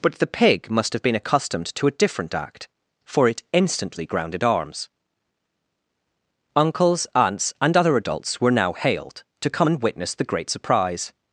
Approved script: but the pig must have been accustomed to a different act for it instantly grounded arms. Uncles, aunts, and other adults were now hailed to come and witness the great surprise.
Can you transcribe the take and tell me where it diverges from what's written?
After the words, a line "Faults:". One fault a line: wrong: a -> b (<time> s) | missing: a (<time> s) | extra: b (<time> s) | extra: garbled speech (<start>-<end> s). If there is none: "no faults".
but the pig must have been accustomed to a different act for it instantly grounded arms. Uncles, aunts, and other adults were now hailed to come and witness the great surprise.
Faults:
no faults